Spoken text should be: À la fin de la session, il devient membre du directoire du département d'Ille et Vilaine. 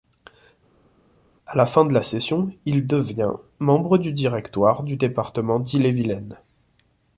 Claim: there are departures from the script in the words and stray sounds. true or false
false